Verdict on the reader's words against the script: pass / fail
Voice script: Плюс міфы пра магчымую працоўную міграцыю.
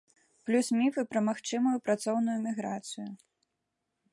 pass